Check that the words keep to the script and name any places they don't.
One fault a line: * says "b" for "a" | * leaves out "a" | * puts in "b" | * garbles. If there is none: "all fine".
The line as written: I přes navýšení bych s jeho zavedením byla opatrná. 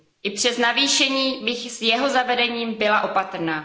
all fine